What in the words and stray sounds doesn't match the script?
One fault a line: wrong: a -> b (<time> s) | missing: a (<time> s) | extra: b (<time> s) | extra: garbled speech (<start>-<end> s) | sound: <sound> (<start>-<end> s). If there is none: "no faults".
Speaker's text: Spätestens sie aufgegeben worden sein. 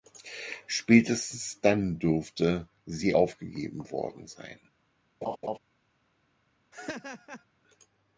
extra: dann dürfte (1.6 s)
sound: laugh (5.2-5.6 s)
sound: laugh (6.7-7.4 s)